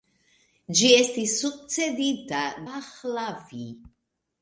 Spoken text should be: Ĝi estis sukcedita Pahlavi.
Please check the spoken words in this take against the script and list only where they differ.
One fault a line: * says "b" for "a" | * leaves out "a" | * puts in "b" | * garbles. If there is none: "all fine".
all fine